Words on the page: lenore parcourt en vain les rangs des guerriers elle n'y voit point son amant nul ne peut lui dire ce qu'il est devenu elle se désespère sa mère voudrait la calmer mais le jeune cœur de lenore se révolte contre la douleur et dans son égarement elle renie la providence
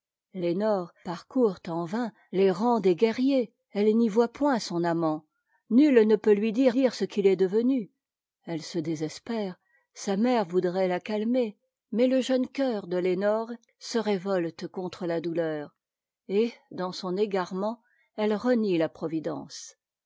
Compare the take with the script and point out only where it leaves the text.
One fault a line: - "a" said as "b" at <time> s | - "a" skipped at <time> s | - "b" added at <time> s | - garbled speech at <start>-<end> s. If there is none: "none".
- "dire" added at 6.7 s